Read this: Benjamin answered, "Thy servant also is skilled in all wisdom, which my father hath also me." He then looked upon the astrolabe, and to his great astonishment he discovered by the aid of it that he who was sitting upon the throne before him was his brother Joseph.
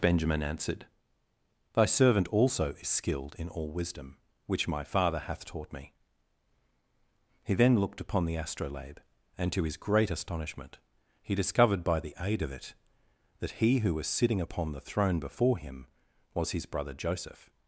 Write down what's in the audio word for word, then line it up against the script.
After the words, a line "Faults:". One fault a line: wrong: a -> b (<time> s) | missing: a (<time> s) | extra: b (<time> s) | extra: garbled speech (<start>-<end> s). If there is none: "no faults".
Benjamin answered, "Thy servant also is skilled in all wisdom, which my father hath taught me." He then looked upon the astrolabe, and to his great astonishment he discovered by the aid of it that he who was sitting upon the throne before him was his brother Joseph.
Faults:
wrong: also -> taught (5.4 s)